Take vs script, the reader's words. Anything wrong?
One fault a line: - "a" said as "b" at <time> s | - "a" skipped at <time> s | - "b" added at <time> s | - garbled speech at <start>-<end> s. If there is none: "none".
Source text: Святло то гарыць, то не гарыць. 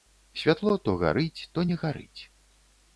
none